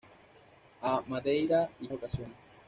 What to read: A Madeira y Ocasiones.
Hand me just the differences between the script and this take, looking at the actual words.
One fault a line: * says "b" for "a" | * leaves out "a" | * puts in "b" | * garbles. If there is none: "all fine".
all fine